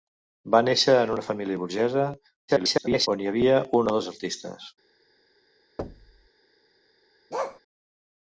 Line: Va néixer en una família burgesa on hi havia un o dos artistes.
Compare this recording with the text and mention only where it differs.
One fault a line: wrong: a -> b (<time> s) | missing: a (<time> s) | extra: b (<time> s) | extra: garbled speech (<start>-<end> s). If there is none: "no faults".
extra: garbled speech (2.5-3.1 s)